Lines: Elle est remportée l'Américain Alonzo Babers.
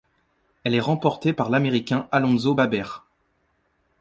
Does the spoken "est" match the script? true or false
true